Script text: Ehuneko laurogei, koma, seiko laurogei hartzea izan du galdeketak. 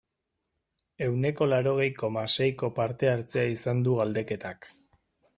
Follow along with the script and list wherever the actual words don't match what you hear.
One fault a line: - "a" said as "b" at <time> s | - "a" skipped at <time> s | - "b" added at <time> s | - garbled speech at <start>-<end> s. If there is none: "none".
- "laurogei" said as "parte" at 2.8 s